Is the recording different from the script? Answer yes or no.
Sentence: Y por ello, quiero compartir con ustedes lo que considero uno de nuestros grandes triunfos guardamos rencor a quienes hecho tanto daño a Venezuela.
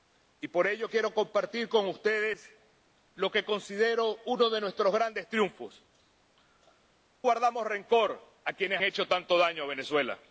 no